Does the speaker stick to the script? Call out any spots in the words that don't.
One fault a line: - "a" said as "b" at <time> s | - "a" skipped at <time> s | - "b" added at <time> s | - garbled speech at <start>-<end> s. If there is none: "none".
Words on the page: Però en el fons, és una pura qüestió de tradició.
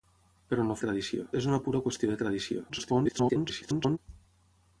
- "fons" said as "tradició" at 0.8 s
- garbled speech at 2.7-4.0 s